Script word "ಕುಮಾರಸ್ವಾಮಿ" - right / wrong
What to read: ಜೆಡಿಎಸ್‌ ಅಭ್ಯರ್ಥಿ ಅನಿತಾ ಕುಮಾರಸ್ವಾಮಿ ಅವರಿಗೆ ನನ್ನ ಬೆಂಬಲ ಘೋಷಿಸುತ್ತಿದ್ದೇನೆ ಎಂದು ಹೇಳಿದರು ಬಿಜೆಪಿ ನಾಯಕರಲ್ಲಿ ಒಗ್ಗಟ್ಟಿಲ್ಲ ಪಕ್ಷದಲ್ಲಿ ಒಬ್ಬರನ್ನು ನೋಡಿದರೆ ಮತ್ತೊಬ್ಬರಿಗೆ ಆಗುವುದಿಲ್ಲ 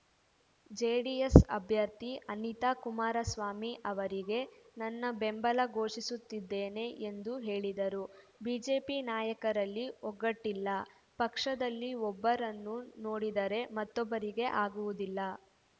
right